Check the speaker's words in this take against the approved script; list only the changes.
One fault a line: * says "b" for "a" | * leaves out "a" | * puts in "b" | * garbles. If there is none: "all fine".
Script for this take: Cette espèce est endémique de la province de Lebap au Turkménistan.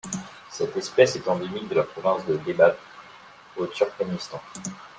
all fine